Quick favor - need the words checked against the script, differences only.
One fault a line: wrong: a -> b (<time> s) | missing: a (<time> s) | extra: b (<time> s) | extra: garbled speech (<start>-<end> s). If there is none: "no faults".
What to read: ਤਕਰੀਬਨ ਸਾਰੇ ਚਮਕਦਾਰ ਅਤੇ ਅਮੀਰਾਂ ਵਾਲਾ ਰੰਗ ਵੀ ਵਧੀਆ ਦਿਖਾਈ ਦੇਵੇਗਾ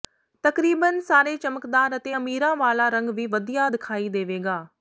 no faults